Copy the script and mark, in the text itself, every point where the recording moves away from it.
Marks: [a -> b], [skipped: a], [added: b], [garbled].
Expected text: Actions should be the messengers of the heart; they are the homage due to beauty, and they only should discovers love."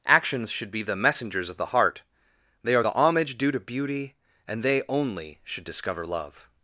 Actions should be the messengers of the heart; they are the homage due to beauty, and they only should [discovers -> discover] love."